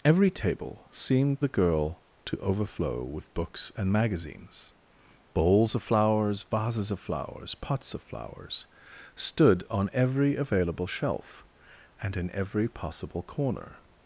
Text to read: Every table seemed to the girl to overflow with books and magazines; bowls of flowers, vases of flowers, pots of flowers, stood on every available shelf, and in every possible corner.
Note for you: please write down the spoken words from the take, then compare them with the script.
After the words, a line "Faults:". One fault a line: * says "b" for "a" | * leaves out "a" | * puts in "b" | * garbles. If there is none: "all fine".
Every table seemed the girl to overflow with books and magazines; bowls of flowers, vases of flowers, pots of flowers, stood on every available shelf, and in every possible corner.
Faults:
* leaves out "to"